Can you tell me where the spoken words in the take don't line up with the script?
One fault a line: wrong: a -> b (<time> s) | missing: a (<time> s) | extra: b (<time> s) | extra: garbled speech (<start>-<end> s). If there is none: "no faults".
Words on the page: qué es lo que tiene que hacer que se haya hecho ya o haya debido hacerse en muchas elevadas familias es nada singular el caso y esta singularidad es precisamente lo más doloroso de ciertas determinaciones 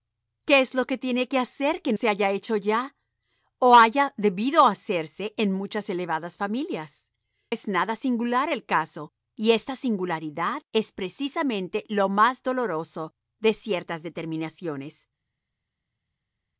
no faults